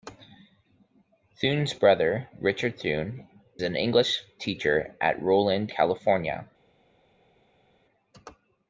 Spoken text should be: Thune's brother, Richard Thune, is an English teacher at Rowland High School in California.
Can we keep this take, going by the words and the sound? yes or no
no